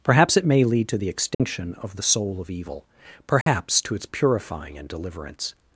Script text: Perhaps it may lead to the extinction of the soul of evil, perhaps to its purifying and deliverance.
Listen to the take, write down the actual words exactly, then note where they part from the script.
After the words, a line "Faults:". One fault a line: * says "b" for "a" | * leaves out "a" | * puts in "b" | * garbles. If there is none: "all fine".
Perhaps it may lead to the extinction of the soul of evil, perhaps to its purifying and deliverance.
Faults:
all fine